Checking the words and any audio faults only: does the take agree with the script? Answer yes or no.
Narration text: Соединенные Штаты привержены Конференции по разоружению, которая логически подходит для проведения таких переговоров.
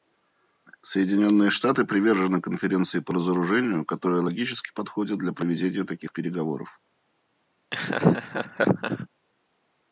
no